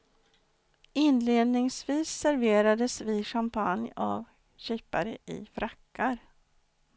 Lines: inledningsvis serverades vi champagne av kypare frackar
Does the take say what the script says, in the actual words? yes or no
no